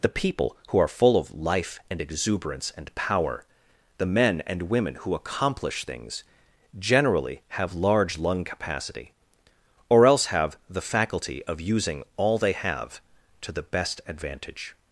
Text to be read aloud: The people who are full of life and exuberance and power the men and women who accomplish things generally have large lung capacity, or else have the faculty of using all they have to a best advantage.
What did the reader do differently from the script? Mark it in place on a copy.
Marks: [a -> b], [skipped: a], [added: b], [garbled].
The people who are full of life and exuberance and power the men and women who accomplish things generally have large lung capacity, or else have the faculty of using all they have to [a -> the] best advantage.